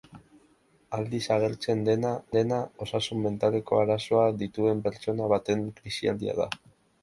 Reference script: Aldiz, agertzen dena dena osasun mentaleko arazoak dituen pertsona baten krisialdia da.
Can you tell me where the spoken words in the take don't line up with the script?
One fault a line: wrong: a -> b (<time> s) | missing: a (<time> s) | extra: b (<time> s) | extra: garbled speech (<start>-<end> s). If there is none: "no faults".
no faults